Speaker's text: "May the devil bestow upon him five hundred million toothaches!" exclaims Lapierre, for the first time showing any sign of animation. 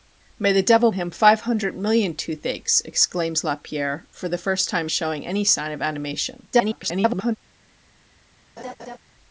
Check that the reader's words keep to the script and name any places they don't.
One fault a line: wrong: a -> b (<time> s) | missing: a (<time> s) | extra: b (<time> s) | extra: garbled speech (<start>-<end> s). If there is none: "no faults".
missing: bestow upon (0.9 s)
extra: garbled speech (6.5-7.4 s)